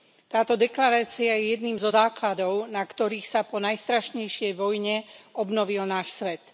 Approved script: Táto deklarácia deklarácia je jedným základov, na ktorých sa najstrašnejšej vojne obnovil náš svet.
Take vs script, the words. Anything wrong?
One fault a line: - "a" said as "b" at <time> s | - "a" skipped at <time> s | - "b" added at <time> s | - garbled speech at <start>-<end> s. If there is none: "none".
- "deklarácia" skipped at 1.4 s
- "zo" added at 1.7 s
- "po" added at 3.4 s